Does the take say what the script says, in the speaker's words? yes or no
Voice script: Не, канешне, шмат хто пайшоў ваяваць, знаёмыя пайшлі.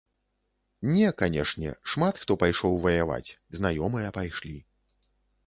yes